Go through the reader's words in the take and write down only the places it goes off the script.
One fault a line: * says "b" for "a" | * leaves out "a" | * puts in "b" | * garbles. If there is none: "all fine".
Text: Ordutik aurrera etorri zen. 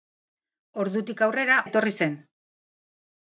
all fine